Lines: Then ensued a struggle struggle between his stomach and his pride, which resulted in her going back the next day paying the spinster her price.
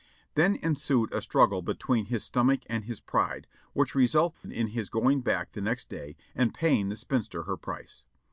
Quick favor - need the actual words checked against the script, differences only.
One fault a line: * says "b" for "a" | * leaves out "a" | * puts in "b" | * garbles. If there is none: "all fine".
* leaves out "struggle"
* says "his" for "her"
* puts in "and"